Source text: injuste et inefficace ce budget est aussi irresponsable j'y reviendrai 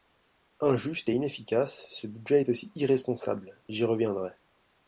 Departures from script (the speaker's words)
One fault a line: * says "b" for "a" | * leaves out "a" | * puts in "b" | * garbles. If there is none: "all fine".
all fine